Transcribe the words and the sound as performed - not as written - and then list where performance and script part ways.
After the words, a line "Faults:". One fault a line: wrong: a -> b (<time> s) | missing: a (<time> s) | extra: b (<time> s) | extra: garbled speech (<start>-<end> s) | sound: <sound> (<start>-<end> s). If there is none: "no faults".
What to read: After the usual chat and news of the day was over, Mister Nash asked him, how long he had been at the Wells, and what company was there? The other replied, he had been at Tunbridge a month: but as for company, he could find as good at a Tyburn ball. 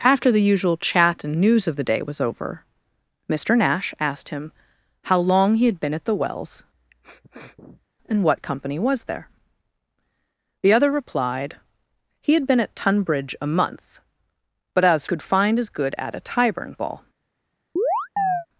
After the usual chat and news of the day was over, Mister Nash asked him, how long he had been at the Wells, and what company was there? The other replied, he had been at Tunbridge a month: but as could find as good at a Tyburn ball.
Faults:
sound: sniff (6.7-7.9 s)
missing: for company he (15.0 s)
sound: chirp (17.8-18.5 s)